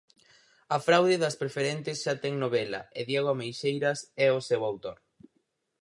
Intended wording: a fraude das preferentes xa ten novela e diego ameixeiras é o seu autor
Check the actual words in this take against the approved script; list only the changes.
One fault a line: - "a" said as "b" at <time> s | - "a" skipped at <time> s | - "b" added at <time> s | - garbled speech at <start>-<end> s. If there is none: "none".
none